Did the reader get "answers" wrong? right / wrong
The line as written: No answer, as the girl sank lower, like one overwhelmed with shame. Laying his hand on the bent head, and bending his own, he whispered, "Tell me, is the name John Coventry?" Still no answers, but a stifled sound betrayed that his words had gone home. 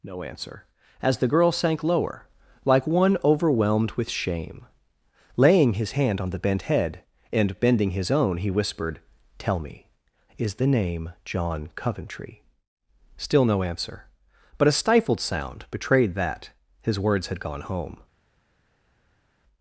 wrong